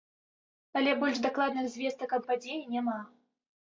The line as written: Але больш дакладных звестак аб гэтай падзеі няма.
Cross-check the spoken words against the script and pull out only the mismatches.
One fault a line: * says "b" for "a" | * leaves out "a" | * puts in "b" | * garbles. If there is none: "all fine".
* leaves out "гэтай"